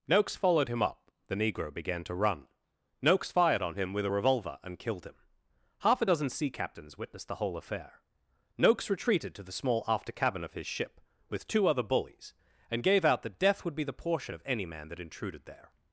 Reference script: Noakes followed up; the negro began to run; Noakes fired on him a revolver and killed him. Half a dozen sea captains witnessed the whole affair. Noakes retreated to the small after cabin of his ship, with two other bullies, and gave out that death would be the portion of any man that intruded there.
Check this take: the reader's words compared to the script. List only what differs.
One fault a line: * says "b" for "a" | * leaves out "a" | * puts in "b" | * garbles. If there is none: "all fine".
* puts in "him"
* puts in "with"